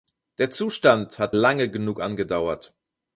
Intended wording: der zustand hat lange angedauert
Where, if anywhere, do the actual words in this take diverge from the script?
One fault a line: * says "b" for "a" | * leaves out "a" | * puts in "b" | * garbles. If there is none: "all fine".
* puts in "genug"